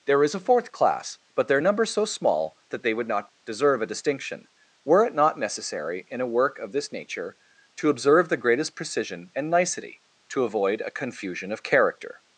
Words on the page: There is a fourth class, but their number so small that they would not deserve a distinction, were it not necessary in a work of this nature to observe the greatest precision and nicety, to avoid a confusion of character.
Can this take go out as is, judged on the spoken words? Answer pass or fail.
pass